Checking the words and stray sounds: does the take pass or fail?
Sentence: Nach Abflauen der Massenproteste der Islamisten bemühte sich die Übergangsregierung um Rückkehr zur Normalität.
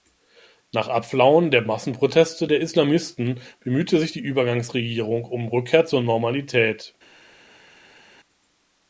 pass